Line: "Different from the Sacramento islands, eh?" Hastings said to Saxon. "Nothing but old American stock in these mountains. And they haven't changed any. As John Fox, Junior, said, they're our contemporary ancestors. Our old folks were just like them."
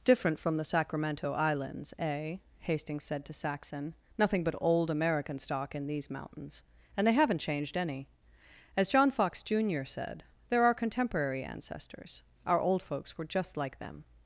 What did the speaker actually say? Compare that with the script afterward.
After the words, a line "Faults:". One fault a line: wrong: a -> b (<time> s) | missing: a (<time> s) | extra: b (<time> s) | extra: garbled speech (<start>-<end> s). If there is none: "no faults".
"Different from the Sacramento islands, eh?" Hastings said to Saxon. "Nothing but old American stock in these mountains. And they haven't changed any. As John Fox, Junior, said, they're our contemporary ancestors. Our old folks were just like them."
Faults:
no faults